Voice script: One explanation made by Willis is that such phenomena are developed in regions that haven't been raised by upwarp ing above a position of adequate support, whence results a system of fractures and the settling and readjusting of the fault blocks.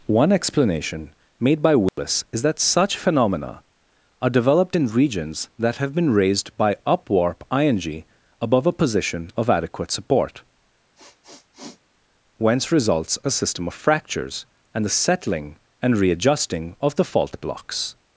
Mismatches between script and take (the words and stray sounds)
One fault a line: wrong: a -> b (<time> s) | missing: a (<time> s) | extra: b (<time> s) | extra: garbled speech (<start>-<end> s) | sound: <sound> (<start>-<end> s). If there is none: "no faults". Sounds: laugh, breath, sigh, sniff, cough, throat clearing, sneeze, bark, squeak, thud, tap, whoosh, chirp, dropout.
sound: dropout (1.9-2.0 s)
wrong: haven't -> have (5.8 s)
sound: sniff (10.9-11.8 s)